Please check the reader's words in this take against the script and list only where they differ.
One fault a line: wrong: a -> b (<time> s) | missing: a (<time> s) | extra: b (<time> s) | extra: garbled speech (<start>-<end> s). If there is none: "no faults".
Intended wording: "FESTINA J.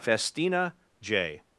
no faults